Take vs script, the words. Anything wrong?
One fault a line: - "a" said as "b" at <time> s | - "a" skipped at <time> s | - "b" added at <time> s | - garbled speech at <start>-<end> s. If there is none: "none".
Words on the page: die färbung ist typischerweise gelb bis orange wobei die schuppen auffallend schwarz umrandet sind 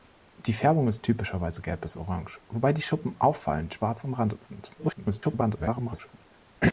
- garbled speech at 4.8-6.2 s